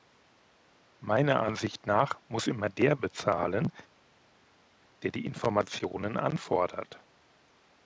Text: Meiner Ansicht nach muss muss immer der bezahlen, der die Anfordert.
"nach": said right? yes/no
yes